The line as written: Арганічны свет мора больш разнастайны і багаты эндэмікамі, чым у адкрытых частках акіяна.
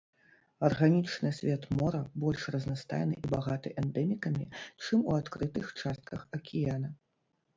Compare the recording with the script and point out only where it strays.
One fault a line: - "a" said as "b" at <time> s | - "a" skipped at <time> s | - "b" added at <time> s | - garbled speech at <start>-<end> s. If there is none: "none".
none